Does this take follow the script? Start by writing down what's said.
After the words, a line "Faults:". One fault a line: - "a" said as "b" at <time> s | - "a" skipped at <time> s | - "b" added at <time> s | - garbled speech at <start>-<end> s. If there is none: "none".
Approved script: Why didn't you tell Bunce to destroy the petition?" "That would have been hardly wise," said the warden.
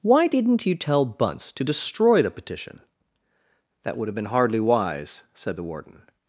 Why didn't you tell Bunce to destroy the petition?" "That would have been hardly wise," said the warden.
Faults:
none